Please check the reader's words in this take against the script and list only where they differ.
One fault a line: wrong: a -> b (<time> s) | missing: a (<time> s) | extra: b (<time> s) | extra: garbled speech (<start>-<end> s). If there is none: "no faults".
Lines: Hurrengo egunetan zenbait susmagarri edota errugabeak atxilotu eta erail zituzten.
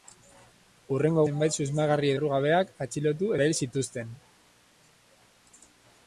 missing: egunetan (1.2 s)
missing: edota (2.1 s)
missing: eta (3.3 s)